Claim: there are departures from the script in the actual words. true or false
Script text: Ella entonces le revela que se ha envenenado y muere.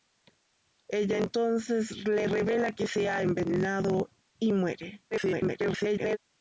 true